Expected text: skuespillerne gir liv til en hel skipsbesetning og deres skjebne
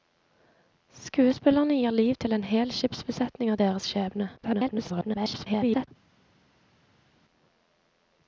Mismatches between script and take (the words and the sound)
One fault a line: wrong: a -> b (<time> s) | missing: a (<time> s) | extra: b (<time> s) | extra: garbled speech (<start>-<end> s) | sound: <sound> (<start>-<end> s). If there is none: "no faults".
extra: garbled speech (4.4-5.9 s)